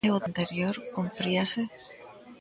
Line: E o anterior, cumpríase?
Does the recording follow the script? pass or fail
pass